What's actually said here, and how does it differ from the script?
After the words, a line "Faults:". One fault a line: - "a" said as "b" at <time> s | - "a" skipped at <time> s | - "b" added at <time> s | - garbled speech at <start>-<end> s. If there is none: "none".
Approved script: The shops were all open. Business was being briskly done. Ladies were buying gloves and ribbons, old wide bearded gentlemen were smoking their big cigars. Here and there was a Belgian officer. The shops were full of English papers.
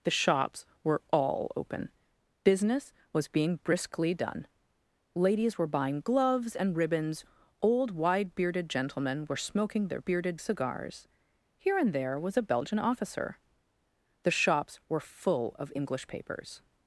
The shops were all open. Business was being briskly done. Ladies were buying gloves and ribbons, old wide bearded gentlemen were smoking their bearded cigars. Here and there was a Belgian officer. The shops were full of English papers.
Faults:
- "big" said as "bearded" at 10.1 s